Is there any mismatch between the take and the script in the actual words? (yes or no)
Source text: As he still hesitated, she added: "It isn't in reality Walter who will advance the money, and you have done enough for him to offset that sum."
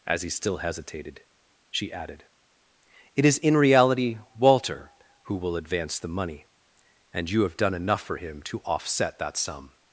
yes